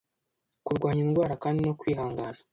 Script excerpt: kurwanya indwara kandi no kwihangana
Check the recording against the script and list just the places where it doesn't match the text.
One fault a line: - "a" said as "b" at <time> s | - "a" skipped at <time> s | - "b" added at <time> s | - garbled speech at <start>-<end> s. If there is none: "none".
none